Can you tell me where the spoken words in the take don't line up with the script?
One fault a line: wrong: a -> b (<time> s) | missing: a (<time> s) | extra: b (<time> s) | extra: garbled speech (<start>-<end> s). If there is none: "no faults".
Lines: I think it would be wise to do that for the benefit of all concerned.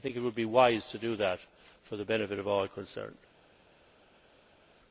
no faults